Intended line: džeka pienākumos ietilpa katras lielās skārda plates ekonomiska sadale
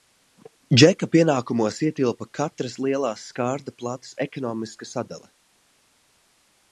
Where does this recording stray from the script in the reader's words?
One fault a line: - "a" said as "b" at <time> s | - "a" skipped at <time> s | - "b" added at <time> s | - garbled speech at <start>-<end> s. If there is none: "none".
none